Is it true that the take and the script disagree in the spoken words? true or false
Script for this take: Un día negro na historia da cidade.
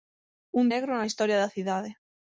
true